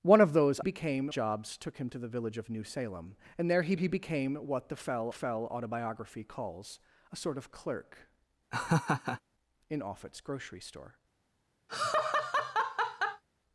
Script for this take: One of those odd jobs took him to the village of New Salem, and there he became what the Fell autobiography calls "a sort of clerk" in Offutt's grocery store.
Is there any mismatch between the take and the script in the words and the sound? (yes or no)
yes